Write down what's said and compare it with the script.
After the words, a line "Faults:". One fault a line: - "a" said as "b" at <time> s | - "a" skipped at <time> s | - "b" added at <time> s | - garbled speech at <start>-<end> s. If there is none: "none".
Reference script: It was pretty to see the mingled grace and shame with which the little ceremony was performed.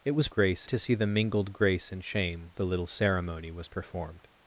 It was grace to see the mingled grace and shame the little ceremony was performed.
Faults:
- "pretty" said as "grace" at 0.3 s
- "with which" skipped at 2.5 s